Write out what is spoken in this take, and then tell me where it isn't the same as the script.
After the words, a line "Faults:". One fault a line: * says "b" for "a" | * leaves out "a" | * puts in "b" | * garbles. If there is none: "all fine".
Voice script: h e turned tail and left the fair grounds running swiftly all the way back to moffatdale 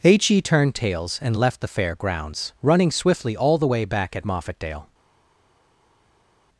h e turned tails and left the fair grounds running swiftly all the way back at moffatdale
Faults:
* says "tails" for "tail"
* says "at" for "to"